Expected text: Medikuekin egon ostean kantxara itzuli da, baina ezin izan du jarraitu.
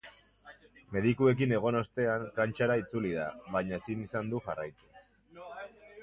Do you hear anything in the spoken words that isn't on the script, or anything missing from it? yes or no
no